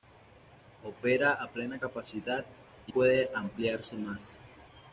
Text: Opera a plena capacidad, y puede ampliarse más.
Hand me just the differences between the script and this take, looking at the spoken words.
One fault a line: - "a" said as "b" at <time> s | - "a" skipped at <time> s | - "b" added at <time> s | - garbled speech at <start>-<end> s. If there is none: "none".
none